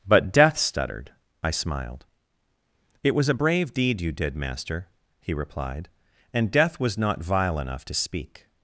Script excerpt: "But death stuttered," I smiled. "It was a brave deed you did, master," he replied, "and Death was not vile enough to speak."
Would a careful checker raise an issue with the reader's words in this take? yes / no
no